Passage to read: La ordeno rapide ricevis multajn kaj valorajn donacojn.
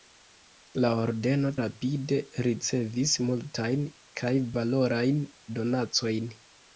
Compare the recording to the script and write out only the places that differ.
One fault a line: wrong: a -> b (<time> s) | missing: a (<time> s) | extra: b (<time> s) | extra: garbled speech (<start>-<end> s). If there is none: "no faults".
no faults